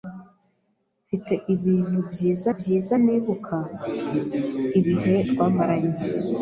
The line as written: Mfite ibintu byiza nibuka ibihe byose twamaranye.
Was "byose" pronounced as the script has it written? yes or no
no